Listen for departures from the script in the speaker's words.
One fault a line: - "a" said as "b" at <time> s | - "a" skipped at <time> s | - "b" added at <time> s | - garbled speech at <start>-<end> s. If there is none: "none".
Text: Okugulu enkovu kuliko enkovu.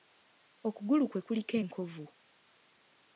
- "enkovu" said as "kwe" at 1.1 s